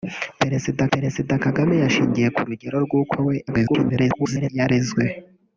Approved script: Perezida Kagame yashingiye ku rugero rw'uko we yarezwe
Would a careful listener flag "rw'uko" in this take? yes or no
no